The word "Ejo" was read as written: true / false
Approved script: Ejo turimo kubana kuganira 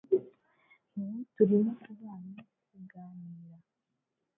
false